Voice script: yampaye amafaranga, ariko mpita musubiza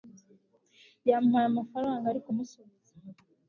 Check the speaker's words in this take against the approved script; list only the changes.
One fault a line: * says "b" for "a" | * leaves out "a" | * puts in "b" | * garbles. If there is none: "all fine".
* leaves out "mpita"